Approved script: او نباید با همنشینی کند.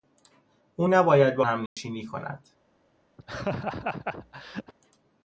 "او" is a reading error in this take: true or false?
false